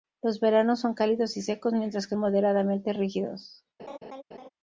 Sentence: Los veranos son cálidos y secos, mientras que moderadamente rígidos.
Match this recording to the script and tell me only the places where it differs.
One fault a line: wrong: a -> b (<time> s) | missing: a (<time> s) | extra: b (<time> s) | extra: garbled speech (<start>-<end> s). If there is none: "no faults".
no faults